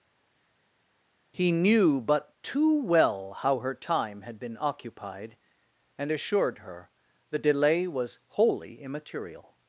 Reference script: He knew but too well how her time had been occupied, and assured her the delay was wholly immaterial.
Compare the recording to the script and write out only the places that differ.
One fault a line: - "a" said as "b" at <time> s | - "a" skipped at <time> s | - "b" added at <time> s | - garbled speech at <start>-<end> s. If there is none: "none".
none